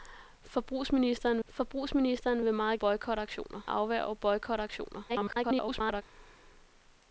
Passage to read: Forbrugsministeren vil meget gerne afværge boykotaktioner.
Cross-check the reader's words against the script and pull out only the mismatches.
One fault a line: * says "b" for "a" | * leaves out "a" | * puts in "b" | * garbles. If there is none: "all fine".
* puts in "forbrugsministeren"
* says "boykotaktioner" for "gerne"
* garbles